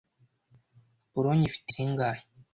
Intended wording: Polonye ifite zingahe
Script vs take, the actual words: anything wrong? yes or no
no